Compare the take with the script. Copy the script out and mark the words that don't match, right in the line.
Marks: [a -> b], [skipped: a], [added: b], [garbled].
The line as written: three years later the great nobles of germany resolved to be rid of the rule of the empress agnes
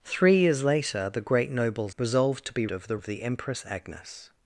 three years later the great nobles [skipped: of germany] resolved to be [skipped: rid] of the [skipped: rule] of the empress agnes